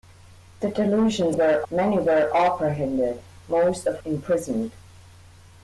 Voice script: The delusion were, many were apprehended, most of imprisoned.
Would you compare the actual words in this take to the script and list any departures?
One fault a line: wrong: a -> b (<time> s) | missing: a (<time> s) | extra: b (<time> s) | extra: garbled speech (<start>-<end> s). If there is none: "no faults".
no faults